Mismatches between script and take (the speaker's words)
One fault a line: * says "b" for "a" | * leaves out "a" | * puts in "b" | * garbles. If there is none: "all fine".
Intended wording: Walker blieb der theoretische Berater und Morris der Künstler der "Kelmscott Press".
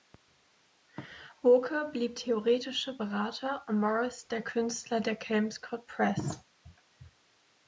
* leaves out "der"